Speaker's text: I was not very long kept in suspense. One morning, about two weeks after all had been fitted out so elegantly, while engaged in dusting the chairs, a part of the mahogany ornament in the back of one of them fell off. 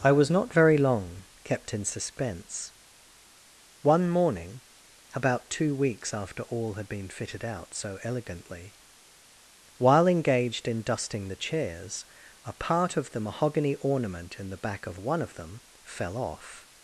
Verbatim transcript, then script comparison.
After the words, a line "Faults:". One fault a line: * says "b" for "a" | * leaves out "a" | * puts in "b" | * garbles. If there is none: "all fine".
I was not very long kept in suspense. One morning, about two weeks after all had been fitted out so elegantly, while engaged in dusting the chairs, a part of the mahogany ornament in the back of one of them fell off.
Faults:
all fine